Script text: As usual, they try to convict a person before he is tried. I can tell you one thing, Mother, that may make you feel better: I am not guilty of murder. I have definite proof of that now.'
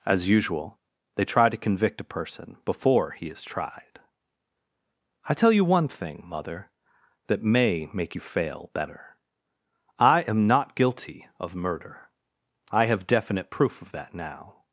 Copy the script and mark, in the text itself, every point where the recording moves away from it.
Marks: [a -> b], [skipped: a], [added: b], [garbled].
As usual, they try to convict a person before he is tried. I [skipped: can] tell you one thing, Mother, that may make you [feel -> fail] better: I am not guilty of murder. I have definite proof of that now.'